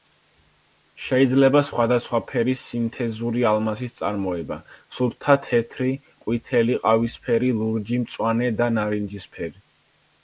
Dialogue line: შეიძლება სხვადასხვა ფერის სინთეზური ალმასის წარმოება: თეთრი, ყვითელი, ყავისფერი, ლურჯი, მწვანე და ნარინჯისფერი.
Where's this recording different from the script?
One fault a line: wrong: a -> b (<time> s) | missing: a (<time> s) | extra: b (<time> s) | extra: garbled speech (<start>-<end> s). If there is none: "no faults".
extra: სუფთა (5.0 s)